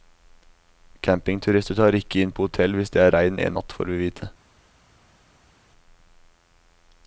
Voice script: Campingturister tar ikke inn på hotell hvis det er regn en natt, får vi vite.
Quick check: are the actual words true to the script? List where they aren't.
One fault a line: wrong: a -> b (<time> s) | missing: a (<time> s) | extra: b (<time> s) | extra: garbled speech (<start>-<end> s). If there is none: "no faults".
no faults